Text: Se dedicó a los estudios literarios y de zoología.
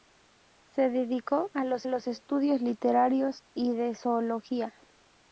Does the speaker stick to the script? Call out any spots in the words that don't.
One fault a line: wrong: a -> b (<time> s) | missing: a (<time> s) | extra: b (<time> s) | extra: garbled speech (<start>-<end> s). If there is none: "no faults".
extra: los (1.8 s)